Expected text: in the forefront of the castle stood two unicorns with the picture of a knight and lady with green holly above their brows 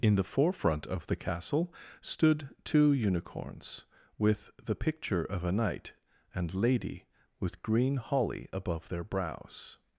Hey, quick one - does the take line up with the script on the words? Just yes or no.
yes